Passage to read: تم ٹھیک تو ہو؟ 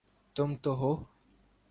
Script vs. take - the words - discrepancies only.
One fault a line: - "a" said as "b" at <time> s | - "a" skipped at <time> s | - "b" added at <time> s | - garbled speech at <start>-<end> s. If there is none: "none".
- "ٹھیک" skipped at 0.5 s